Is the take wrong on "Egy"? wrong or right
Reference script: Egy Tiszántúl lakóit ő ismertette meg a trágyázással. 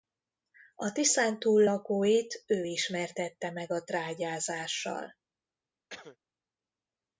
wrong